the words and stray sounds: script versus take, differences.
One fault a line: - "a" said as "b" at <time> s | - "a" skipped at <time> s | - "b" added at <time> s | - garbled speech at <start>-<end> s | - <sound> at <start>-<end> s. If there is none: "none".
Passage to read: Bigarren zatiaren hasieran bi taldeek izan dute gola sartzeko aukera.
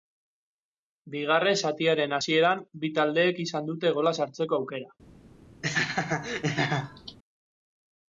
- laugh at 5.6-7.2 s